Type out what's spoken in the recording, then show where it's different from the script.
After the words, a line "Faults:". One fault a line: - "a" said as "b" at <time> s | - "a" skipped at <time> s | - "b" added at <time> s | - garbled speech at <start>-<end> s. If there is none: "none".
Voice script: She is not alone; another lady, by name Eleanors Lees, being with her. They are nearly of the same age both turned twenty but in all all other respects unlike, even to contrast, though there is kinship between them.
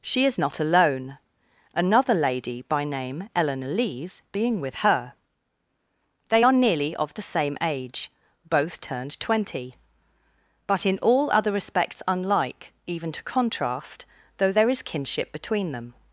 She is not alone; another lady, by name Eleanor Lees, being with her. They are nearly of the same age both turned twenty but in all other respects unlike, even to contrast, though there is kinship between them.
Faults:
- "Eleanors" said as "Eleanor" at 3.4 s
- "all" skipped at 11.3 s